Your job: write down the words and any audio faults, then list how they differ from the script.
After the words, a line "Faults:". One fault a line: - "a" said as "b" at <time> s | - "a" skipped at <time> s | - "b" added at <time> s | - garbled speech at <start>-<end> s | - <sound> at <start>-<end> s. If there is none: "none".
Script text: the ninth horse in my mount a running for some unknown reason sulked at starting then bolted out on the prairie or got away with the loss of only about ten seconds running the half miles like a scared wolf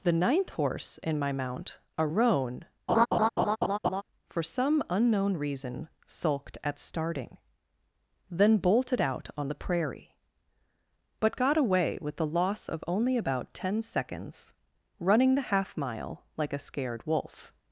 the ninth horse in my mount a roan for some unknown reason sulked at starting then bolted out on the prairie but got away with the loss of only about ten seconds running the half mile like a scared wolf
Faults:
- "running" said as "roan" at 2.0 s
- laugh at 2.9-4.0 s
- "or" said as "but" at 11.2 s
- "miles" said as "mile" at 15.8 s